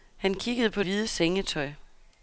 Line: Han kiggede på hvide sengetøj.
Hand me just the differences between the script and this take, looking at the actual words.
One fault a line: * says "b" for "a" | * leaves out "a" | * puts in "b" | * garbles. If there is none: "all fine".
all fine